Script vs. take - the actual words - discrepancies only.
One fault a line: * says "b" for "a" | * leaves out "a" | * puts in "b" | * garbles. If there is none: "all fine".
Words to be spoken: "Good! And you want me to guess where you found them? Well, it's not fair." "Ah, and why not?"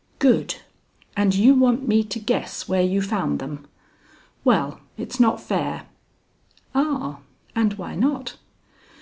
all fine